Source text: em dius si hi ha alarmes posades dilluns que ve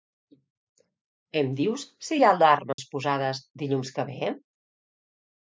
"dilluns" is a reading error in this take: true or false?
false